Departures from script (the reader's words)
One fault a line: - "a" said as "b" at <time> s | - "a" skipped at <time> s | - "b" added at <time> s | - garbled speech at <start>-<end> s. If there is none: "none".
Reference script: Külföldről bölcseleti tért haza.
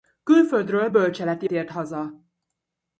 none